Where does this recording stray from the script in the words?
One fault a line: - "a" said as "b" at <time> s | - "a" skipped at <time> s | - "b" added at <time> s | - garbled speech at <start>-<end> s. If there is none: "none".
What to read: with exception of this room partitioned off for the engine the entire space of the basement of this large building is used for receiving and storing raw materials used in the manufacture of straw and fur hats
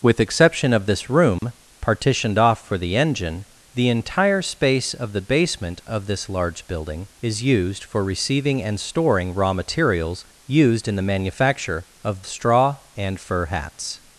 none